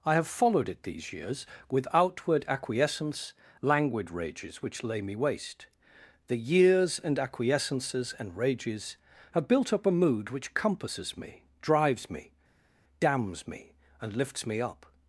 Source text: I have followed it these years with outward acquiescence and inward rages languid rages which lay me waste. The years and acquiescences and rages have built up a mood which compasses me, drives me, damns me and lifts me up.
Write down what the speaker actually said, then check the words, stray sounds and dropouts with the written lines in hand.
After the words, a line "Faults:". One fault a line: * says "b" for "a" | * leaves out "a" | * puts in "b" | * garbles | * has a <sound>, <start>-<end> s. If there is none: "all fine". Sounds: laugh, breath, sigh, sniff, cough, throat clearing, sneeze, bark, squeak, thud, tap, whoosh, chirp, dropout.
I have followed it these years with outward acquiescence languid rages which lay me waste. The years and acquiescences and rages have built up a mood which compasses me, drives me, damns me and lifts me up.
Faults:
* leaves out "and inward rages"